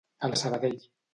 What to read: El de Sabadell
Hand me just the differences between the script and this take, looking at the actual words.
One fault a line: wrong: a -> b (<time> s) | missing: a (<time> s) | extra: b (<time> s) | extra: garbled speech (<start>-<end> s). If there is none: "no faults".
no faults